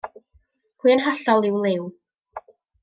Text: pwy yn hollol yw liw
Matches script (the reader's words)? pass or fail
pass